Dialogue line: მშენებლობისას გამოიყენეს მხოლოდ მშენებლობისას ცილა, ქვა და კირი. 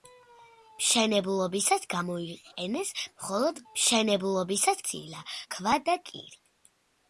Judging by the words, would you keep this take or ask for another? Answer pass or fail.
pass